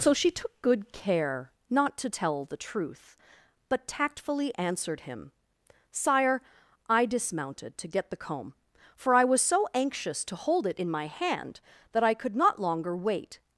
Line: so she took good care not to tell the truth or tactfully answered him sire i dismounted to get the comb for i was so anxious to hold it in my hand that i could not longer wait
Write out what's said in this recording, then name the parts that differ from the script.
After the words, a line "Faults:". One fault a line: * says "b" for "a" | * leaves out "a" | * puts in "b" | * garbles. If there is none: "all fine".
so she took good care not to tell the truth but tactfully answered him sire i dismounted to get the comb for i was so anxious to hold it in my hand that i could not longer wait
Faults:
* says "but" for "or"